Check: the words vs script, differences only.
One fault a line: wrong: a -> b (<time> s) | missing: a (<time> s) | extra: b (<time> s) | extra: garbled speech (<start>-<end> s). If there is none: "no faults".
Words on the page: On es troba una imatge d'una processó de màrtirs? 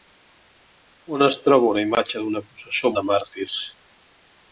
no faults